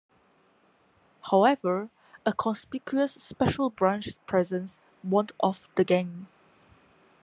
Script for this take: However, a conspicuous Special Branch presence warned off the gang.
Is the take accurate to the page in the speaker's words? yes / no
yes